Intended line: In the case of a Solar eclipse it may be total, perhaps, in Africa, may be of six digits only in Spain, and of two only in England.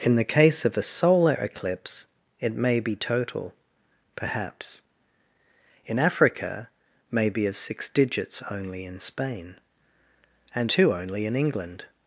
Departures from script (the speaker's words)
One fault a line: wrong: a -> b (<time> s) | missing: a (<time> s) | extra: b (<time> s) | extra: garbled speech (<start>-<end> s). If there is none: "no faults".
missing: of (10.7 s)